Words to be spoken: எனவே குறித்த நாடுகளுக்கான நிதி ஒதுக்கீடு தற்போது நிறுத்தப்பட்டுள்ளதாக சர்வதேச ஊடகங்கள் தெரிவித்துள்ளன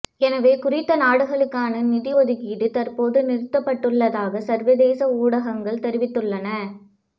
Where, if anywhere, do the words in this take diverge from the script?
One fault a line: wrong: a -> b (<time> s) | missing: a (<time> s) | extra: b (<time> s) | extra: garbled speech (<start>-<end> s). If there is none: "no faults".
no faults